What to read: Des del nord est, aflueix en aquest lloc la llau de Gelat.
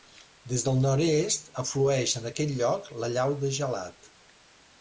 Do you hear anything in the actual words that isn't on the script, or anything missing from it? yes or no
no